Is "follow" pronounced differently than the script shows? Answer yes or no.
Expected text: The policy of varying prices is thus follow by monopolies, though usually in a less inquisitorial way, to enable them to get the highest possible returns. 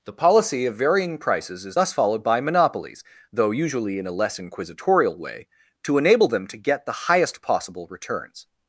yes